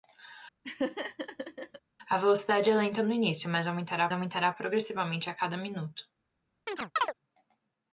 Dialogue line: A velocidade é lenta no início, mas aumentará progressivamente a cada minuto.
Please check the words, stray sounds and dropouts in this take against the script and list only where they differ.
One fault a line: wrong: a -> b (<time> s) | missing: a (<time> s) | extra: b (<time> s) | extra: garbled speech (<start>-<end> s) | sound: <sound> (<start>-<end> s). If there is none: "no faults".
sound: laugh (0.6-1.8 s)
extra: aumentará (4.1 s)
sound: chirp (6.7-7.1 s)